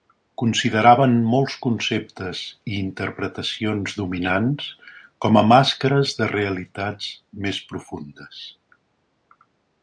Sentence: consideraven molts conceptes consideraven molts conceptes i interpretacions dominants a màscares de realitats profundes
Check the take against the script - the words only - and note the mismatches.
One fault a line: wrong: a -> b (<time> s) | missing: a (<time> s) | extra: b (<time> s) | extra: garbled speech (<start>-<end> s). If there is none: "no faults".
missing: consideraven molts conceptes (2.4 s)
extra: com (5.3 s)
extra: més (7.5 s)